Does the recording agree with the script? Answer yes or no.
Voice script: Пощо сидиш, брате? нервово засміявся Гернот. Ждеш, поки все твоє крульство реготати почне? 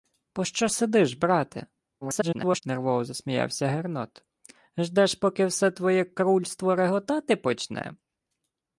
no